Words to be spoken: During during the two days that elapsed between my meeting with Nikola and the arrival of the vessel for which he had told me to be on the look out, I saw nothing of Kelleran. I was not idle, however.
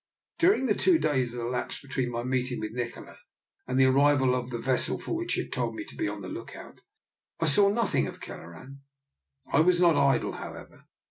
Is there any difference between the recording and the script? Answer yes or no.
yes